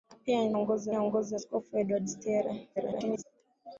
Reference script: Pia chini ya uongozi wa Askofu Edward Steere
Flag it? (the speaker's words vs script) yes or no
yes